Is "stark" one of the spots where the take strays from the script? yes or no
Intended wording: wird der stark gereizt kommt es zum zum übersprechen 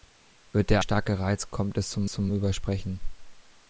no